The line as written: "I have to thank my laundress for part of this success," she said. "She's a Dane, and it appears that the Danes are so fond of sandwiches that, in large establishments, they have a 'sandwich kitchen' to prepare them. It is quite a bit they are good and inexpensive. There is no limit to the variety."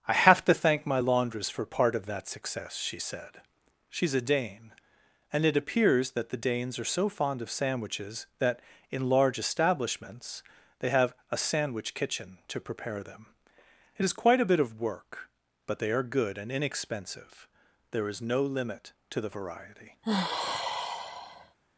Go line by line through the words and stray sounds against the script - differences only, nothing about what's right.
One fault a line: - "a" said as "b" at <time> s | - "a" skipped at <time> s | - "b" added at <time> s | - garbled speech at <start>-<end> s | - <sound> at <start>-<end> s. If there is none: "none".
- "this" said as "that" at 2.1 s
- "of work but" added at 14.6 s
- sigh at 20.0-21.6 s